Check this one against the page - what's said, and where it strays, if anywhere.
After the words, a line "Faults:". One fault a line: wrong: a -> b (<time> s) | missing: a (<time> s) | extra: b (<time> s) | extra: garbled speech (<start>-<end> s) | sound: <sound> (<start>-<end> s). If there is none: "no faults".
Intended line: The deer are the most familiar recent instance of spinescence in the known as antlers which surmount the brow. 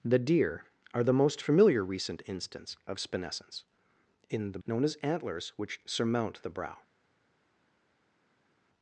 The deer are the most familiar recent instance of spinescence in the known as antlers which surmount the brow.
Faults:
no faults